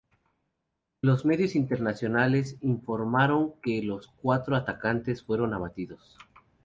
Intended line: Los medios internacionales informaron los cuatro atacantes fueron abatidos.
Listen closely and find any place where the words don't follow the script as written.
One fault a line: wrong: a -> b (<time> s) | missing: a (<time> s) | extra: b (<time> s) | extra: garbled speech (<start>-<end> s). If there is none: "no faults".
extra: que (3.6 s)